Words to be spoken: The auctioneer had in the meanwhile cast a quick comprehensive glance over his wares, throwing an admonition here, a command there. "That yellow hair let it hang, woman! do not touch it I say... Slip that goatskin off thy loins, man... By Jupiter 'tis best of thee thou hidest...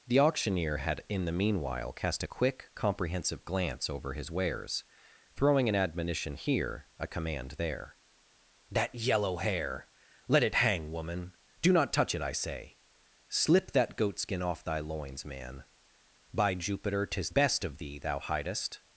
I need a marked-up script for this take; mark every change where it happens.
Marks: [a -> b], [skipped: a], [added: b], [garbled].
The auctioneer had in the meanwhile cast a quick comprehensive glance over his wares, throwing an admonition here, a command there. "That yellow hair let it hang, woman! do not touch it I say... Slip that goatskin off thy loins, man... By Jupiter 'tis best of thee thou hidest...